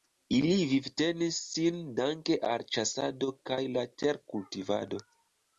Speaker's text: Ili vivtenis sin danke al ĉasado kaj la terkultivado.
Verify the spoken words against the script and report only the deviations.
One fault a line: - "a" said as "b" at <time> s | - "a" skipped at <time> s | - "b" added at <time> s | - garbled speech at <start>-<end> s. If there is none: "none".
none